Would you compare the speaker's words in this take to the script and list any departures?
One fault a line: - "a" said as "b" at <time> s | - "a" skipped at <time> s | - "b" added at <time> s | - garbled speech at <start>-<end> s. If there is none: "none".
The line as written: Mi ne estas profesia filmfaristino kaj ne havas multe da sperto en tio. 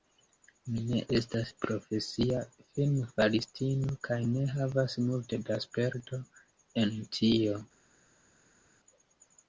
none